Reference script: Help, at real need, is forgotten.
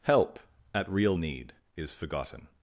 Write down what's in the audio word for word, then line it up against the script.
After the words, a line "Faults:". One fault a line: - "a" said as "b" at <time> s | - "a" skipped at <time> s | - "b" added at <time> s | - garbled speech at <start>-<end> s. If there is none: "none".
Help, at real need, is forgotten.
Faults:
none